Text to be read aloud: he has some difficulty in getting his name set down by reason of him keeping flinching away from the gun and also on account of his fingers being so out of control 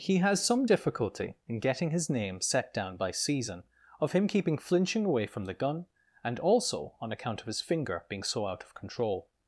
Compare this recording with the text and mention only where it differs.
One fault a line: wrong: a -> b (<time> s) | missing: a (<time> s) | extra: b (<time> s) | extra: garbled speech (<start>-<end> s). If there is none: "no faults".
wrong: reason -> season (3.1 s)
wrong: fingers -> finger (7.6 s)